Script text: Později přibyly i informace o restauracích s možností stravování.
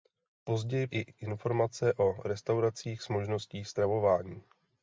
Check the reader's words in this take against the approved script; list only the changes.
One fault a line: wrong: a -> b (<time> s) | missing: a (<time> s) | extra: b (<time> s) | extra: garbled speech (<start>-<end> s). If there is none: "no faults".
missing: přibyly (0.9 s)